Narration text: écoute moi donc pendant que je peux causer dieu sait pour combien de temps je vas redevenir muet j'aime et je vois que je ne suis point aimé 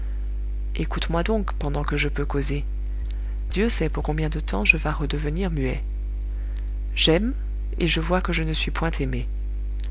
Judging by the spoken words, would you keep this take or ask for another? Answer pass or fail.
pass